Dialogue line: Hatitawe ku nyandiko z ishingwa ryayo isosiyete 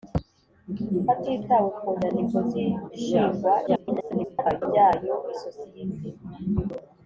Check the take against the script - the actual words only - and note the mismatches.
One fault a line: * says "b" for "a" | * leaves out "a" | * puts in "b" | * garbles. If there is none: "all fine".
* garbles